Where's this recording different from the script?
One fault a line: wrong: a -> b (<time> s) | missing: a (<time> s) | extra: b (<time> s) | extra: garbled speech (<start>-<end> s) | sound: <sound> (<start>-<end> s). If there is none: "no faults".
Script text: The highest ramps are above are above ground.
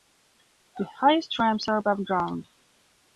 missing: are above (2.0 s)